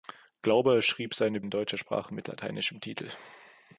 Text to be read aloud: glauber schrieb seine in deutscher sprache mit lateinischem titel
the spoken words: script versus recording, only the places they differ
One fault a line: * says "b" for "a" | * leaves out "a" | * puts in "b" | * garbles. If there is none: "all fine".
all fine